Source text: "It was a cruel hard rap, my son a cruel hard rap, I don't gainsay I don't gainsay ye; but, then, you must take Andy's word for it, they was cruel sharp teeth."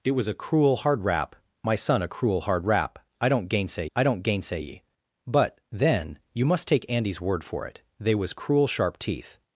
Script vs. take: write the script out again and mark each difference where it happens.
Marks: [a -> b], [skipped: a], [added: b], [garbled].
"It was a cruel hard rap, my son a cruel hard rap, I don't gainsay I don't gainsay ye; but, then, you must take Andy's word for it, they was cruel sharp teeth."